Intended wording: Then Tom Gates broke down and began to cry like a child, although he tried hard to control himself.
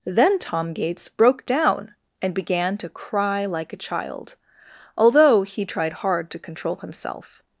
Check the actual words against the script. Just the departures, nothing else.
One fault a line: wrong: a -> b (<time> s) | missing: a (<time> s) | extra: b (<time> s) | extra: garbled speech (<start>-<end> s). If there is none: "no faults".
no faults